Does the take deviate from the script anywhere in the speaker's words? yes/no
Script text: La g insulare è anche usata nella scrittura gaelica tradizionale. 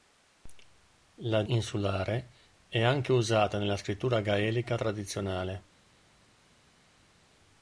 yes